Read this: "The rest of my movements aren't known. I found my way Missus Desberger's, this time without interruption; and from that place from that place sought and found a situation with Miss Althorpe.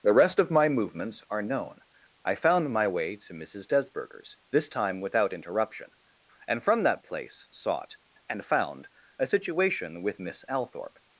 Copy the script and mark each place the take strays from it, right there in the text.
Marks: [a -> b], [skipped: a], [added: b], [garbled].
"The rest of my movements [aren't -> are] known. I found my way [added: to] Missus Desberger's, this time without interruption; and from that place [skipped: from that place] sought and found a situation with Miss Althorpe.